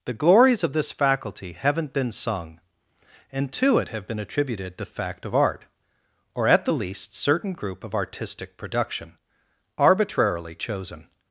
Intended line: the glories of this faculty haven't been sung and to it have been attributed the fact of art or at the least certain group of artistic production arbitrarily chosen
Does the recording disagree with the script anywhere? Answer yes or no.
no